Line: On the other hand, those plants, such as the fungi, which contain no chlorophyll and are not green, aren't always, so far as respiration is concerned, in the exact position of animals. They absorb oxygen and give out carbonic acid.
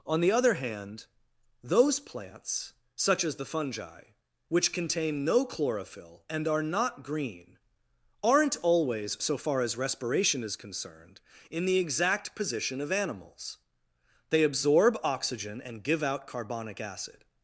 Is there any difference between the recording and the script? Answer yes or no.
no